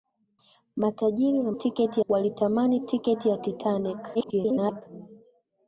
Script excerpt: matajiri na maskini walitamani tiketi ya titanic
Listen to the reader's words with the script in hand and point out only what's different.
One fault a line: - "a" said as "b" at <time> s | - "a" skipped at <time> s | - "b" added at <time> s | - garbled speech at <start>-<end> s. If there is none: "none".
- "maskini" said as "tiketi" at 1.5 s
- garbled speech at 4.1-4.8 s